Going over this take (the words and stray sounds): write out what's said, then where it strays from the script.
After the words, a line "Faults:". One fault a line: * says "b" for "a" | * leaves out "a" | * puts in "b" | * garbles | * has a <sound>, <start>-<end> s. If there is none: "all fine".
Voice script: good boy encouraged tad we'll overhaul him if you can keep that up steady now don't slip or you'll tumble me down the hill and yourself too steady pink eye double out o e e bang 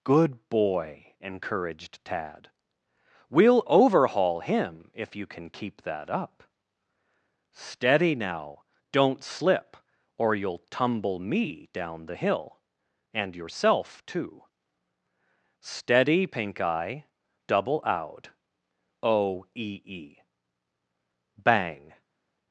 good boy encouraged tad we'll overhaul him if you can keep that up steady now don't slip or you'll tumble me down the hill and yourself too steady pink eye double out o e e bang
Faults:
all fine